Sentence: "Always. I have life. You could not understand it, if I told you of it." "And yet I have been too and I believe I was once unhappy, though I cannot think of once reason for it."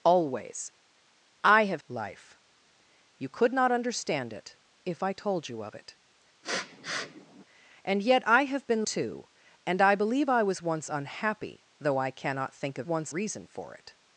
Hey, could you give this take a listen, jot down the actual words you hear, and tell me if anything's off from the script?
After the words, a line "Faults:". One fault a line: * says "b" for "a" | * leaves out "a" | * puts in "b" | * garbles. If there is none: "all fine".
"Always. I have life. You could not understand it, if I told you of it." "And yet I have been too and I believe I was once unhappy, though I cannot think of once reason for it."
Faults:
all fine